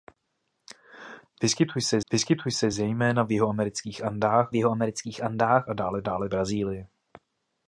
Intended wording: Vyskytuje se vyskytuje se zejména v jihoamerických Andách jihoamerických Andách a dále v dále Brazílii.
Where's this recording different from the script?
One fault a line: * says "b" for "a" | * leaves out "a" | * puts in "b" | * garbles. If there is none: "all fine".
all fine